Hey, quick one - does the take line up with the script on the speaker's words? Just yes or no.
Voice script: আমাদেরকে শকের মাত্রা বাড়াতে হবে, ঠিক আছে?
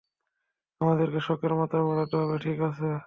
yes